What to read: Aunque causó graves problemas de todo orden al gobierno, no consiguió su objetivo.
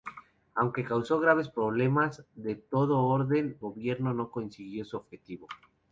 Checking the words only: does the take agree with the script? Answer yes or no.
no